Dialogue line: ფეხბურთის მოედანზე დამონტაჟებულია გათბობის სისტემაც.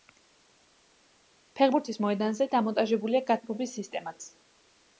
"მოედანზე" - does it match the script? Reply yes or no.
yes